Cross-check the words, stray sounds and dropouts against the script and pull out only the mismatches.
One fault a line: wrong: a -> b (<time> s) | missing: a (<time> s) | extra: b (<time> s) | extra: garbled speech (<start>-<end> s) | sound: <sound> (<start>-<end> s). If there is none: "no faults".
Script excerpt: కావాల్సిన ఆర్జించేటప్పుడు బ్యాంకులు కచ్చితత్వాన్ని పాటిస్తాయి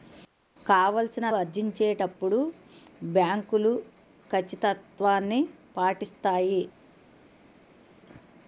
no faults